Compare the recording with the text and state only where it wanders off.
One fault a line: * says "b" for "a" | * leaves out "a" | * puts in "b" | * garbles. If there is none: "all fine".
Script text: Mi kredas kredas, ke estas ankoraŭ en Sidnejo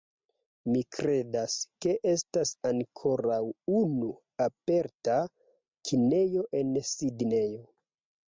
* leaves out "kredas"
* puts in "unu aperta kinejo"